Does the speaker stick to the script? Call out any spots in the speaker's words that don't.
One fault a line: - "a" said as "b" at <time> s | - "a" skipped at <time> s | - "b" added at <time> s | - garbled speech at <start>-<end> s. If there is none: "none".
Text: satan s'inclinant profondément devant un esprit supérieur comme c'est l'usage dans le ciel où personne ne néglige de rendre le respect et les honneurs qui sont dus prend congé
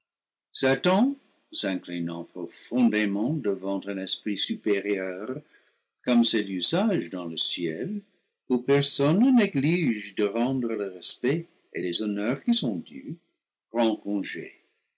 none